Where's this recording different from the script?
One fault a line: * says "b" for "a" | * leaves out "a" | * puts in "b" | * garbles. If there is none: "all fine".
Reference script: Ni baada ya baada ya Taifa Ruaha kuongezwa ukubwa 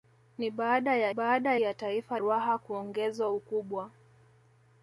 all fine